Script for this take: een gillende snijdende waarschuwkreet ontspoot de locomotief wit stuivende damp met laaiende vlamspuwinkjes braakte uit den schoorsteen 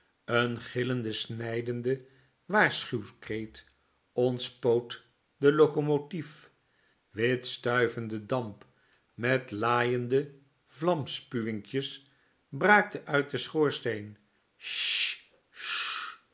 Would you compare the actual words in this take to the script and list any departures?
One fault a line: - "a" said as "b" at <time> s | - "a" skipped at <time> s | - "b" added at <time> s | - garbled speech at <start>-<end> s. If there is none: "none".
none